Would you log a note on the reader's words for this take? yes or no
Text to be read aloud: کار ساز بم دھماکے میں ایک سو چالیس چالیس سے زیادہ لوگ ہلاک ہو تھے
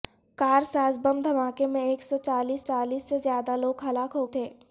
no